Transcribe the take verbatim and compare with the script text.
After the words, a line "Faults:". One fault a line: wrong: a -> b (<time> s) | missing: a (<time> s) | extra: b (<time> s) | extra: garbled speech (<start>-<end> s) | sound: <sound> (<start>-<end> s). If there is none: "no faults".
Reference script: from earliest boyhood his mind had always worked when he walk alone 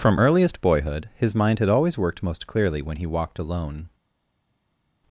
from earliest boyhood his mind had always worked most clearly when he walked alone
Faults:
extra: most clearly (2.2 s)
wrong: walk -> walked (3.1 s)